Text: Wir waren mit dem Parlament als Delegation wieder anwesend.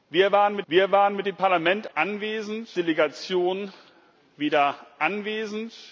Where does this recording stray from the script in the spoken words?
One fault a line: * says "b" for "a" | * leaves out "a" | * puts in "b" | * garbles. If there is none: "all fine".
* puts in "wir waren mit"
* says "anwesend" for "als"